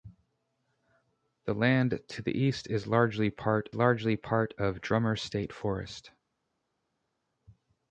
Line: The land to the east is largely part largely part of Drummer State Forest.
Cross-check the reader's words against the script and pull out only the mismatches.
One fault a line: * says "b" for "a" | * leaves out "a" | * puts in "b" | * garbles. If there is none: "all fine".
all fine